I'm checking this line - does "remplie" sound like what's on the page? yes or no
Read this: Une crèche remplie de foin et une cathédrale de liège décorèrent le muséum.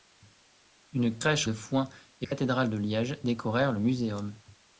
no